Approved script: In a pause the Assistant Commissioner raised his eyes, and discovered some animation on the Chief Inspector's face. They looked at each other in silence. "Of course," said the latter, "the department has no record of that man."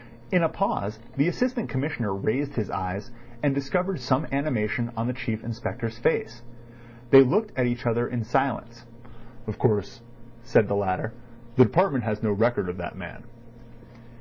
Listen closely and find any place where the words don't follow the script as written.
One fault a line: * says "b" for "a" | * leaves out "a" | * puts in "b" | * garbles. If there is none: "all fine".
all fine